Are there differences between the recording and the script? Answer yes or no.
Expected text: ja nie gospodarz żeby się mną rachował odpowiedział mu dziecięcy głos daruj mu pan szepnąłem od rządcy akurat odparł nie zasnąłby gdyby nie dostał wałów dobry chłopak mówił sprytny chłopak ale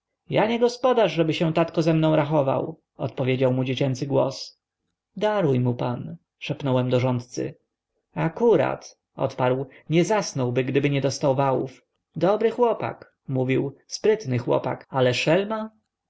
yes